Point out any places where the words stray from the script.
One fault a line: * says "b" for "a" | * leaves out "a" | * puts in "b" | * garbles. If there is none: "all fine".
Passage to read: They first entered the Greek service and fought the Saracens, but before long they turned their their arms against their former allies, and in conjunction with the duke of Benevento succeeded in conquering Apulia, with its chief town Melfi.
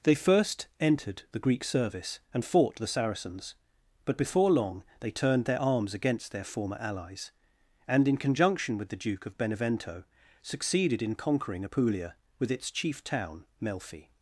* leaves out "their"